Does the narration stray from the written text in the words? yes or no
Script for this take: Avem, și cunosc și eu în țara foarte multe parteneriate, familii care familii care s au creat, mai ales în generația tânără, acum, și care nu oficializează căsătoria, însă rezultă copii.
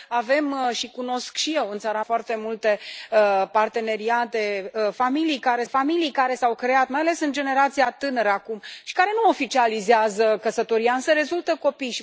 no